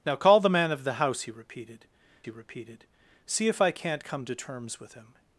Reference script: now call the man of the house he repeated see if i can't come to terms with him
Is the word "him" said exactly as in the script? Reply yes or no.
yes